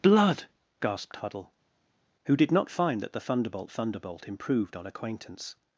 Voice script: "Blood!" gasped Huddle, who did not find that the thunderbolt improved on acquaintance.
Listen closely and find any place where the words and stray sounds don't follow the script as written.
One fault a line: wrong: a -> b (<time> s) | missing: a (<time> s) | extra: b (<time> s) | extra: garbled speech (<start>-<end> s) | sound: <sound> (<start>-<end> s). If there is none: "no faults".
extra: thunderbolt (3.7 s)